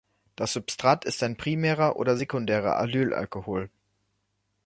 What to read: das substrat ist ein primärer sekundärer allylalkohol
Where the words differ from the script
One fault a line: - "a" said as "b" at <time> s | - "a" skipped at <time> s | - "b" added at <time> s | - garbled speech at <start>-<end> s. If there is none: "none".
- "oder" added at 1.9 s